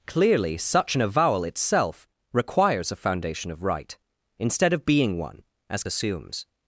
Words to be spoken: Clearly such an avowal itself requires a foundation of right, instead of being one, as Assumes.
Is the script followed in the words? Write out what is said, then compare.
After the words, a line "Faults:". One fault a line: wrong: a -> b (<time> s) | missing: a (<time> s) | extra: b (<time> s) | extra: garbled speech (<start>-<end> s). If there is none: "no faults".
Clearly such an avowal itself requires a foundation of right, instead of being one, as Assumes.
Faults:
no faults